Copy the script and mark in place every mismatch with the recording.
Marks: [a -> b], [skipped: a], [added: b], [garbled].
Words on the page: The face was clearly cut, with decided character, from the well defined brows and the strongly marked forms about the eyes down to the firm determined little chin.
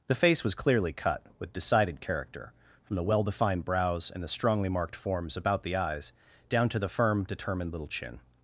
The face was clearly cut, with decided character, from the well defined brows and the strongly marked forms about the eyes down to the firm determined little chin.